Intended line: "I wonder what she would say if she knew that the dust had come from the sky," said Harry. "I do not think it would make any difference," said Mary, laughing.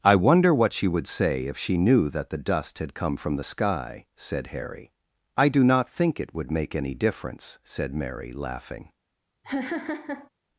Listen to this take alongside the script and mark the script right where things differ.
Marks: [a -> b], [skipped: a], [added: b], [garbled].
"I wonder what she would say if she knew that the dust had come from the sky," said Harry. "I do not think it would make any difference," said Mary, laughing.